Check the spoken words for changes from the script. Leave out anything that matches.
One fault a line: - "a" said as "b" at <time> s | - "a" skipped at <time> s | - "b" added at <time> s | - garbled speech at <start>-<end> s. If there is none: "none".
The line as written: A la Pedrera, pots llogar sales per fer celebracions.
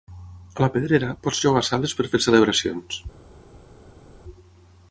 none